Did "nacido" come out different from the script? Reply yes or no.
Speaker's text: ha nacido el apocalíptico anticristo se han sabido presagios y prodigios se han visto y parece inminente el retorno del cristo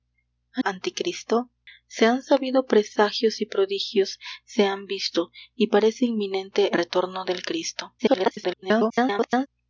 yes